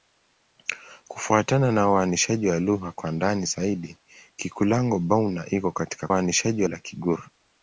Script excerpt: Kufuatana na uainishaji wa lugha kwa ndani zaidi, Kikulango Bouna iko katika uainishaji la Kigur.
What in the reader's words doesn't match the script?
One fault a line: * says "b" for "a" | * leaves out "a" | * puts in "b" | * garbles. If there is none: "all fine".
all fine